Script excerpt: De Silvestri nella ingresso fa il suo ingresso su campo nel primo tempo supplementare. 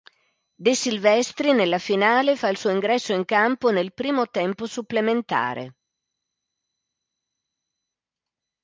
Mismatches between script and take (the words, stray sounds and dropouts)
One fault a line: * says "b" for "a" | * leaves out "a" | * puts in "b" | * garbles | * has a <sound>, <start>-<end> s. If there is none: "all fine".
* says "finale" for "ingresso"
* says "in" for "su"